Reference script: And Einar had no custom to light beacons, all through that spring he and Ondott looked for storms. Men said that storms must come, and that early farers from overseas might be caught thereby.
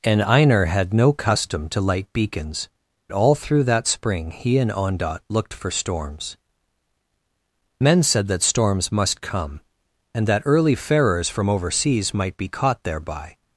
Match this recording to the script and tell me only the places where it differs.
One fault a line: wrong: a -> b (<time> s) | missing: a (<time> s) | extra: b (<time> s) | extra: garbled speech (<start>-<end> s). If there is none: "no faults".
no faults